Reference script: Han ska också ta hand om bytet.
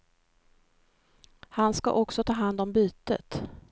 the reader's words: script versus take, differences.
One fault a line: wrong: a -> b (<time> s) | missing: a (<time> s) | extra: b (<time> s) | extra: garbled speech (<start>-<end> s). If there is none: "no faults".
no faults